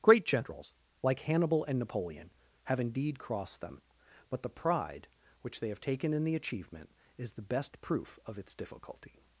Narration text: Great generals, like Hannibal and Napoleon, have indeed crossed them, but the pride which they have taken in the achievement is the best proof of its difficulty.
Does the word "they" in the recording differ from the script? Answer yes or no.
no